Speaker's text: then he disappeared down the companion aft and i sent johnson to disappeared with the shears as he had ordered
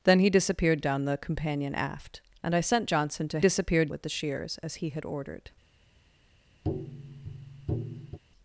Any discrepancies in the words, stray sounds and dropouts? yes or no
yes